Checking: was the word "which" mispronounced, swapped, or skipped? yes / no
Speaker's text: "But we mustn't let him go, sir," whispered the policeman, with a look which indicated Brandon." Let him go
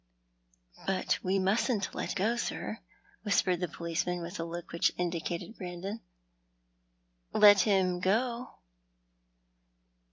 no